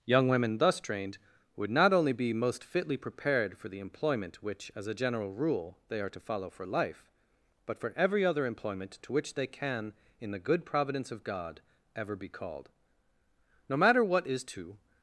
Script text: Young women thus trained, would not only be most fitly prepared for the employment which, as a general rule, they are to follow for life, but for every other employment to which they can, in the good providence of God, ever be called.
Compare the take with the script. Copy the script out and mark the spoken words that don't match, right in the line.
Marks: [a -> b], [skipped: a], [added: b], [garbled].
Young women thus trained, would not only be most fitly prepared for the employment which, as a general rule, they are to follow for life, but for every other employment to which they can, in the good providence of God, ever be called. [added: No matter what is to]